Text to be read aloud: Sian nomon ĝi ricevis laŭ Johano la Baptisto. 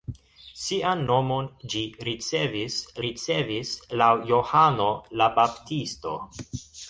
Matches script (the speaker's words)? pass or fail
fail